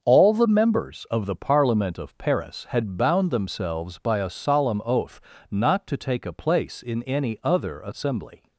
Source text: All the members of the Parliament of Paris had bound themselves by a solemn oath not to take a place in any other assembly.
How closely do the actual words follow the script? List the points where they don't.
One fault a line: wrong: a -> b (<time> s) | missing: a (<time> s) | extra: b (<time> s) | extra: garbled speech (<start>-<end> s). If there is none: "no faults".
no faults